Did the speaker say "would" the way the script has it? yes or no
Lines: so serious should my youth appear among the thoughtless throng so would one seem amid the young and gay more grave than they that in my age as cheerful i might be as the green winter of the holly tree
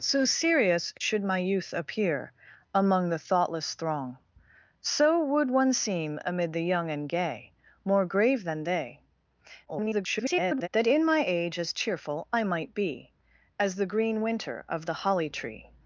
yes